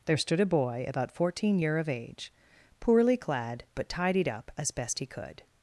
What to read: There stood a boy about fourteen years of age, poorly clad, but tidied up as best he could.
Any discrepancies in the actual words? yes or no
yes